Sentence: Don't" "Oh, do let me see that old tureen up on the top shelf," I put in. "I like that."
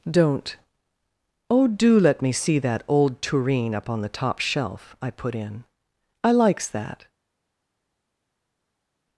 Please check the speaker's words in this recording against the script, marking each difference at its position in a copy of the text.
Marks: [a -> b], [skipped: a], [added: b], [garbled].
Don't" "Oh, do let me see that old tureen up on the top shelf," I put in. "I [like -> likes] that."